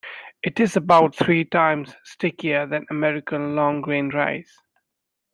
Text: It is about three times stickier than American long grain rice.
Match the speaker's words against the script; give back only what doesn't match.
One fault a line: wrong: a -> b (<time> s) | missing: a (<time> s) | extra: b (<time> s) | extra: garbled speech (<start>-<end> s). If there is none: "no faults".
no faults